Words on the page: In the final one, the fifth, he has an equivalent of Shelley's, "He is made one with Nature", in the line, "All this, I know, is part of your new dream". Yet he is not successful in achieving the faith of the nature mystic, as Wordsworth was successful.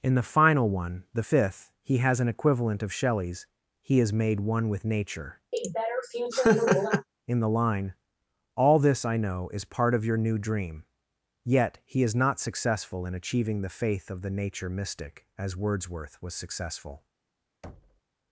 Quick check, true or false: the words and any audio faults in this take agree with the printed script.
false